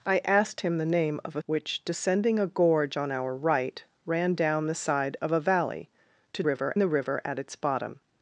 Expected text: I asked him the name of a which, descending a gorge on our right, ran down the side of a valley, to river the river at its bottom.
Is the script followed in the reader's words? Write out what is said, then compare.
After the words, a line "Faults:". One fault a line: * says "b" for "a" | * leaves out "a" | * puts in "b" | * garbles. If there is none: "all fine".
I asked him the name of a which, descending a gorge on our right, ran down the side of a valley, to river the river at its bottom.
Faults:
all fine